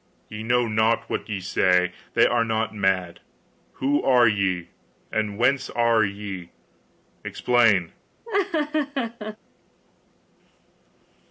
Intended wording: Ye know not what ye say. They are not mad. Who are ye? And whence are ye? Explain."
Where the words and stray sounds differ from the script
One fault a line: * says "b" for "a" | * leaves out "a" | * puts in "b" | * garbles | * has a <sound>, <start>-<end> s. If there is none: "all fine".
* has a laugh, 8.2-9.4 s